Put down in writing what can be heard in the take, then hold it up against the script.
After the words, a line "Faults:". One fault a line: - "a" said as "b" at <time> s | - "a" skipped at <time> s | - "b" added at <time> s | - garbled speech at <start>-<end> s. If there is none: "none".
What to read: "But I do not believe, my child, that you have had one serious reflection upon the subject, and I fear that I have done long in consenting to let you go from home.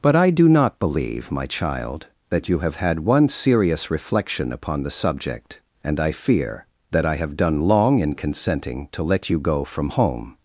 "But I do not believe, my child, that you have had one serious reflection upon the subject, and I fear that I have done long in consenting to let you go from home.
Faults:
none